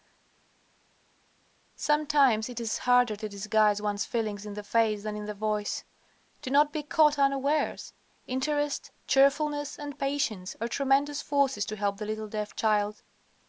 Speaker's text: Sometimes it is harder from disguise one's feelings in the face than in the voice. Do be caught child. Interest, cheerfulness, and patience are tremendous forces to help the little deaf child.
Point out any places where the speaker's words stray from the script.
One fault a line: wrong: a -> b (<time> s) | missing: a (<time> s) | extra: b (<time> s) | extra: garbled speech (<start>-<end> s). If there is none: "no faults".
wrong: from -> to (3.2 s)
extra: not (6.5 s)
wrong: child -> unawares (7.2 s)